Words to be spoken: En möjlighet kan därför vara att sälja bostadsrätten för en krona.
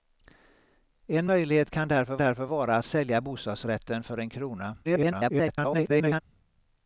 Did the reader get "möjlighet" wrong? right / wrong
right